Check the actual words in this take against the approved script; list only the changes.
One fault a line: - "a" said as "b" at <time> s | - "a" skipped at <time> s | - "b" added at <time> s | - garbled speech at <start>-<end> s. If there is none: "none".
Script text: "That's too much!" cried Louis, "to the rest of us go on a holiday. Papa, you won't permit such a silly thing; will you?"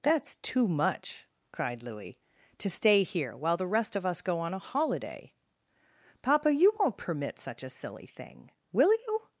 - "stay here while" added at 2.7 s